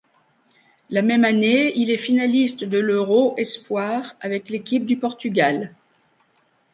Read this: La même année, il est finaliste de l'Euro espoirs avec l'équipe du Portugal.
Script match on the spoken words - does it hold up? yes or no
yes